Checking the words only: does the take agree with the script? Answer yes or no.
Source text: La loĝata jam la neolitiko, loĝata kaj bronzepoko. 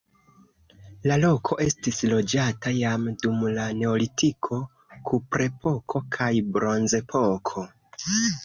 no